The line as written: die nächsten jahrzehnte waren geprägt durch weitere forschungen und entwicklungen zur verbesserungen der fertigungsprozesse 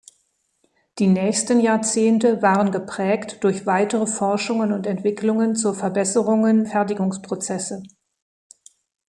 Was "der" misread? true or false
true